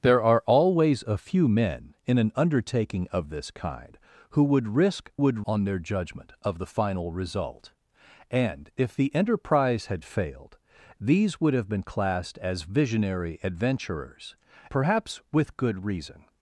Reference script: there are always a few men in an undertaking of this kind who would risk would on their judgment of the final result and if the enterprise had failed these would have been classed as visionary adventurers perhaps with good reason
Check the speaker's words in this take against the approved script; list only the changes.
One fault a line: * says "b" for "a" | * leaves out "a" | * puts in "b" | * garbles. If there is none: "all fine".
all fine